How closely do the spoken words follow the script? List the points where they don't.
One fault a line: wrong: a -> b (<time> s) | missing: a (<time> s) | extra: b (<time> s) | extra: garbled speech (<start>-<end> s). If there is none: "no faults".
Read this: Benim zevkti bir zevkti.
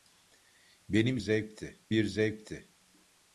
no faults